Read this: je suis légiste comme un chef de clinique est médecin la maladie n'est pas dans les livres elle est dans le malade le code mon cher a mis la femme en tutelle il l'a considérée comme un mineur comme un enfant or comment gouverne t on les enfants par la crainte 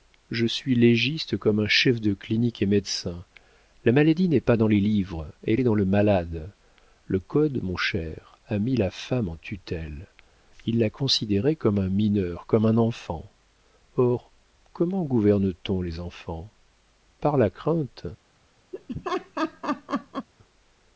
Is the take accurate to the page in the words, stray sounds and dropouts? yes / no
no